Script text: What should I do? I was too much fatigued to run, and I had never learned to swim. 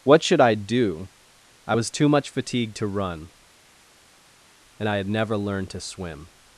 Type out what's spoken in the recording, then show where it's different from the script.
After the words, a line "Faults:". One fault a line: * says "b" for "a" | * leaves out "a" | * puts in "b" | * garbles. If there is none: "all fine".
What should I do? I was too much fatigued to run, and I had never learned to swim.
Faults:
all fine